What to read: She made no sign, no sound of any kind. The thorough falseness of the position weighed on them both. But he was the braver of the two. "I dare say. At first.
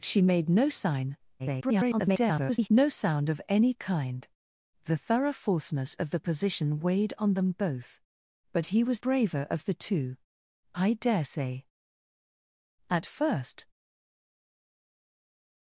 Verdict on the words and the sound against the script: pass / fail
fail